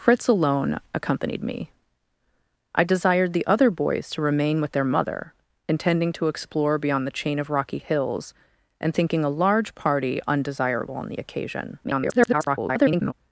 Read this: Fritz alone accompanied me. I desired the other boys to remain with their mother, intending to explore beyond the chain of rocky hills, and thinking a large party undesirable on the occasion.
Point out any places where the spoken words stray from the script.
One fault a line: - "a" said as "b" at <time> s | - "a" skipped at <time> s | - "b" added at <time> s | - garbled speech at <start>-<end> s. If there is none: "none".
- garbled speech at 11.8-13.1 s